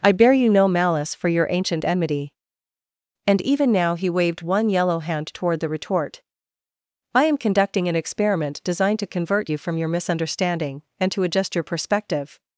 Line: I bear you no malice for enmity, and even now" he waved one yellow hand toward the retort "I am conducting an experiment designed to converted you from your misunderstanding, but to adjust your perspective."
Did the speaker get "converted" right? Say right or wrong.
wrong